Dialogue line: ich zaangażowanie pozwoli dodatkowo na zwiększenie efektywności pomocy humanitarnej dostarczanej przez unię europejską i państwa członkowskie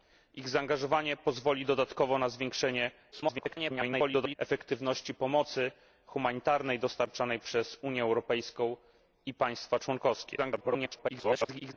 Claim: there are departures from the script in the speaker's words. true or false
true